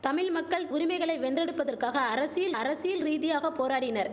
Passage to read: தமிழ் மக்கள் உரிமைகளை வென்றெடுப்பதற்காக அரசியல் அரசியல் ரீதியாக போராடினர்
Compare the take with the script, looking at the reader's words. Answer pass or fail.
pass